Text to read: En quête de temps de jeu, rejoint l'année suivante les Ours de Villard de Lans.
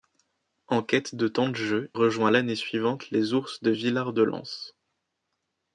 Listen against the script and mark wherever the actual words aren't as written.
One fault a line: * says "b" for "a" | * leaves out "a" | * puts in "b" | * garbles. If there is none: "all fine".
all fine